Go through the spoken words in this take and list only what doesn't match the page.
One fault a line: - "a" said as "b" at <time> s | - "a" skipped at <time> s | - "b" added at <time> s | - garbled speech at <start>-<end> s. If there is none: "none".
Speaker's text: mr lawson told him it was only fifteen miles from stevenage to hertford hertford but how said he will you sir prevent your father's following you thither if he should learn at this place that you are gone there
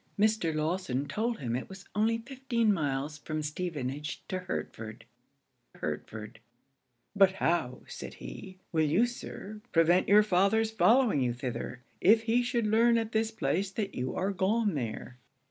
none